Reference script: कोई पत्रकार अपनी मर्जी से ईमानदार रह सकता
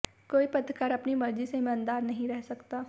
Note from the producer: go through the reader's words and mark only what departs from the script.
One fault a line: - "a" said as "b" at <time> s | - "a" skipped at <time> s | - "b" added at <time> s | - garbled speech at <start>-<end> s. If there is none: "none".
- "नहीं" added at 2.0 s